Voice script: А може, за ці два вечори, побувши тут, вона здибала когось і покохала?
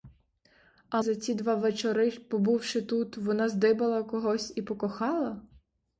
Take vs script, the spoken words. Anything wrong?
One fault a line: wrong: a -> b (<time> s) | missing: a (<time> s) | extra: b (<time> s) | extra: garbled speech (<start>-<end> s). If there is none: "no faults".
missing: може (1.0 s)